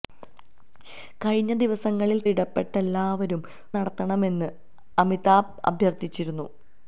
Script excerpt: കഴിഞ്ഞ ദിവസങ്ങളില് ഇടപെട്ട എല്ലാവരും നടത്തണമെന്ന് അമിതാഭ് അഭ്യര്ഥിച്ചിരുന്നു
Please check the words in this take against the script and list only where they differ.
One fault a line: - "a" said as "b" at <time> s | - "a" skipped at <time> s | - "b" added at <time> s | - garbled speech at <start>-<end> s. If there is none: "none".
none